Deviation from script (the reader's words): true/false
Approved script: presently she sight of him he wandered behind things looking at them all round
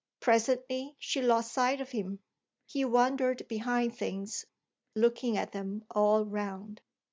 true